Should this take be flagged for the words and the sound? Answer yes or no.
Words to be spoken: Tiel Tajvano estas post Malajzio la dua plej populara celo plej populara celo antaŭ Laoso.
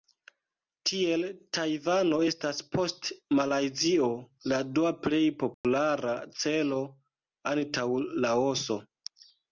yes